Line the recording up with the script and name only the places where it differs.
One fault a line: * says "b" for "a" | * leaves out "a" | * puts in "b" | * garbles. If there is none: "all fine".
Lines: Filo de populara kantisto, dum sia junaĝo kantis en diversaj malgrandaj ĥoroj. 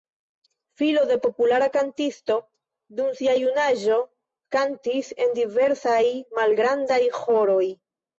all fine